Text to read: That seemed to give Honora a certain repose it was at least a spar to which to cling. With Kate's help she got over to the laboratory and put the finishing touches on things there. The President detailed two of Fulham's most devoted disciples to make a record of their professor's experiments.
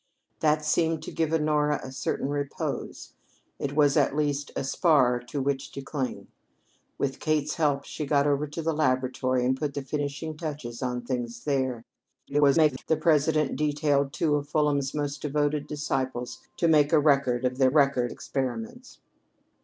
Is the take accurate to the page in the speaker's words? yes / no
no